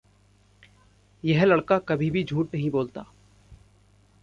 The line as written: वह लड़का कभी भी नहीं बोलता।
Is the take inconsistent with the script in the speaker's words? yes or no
yes